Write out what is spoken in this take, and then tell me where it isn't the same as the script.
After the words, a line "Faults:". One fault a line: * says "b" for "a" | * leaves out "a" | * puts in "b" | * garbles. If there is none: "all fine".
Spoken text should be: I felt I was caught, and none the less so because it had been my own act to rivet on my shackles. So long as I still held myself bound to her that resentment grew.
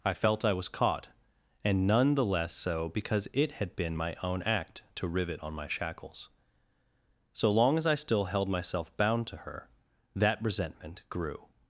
I felt I was caught, and none the less so because it had been my own act to rivet on my shackles. So long as I still held myself bound to her that resentment grew.
Faults:
all fine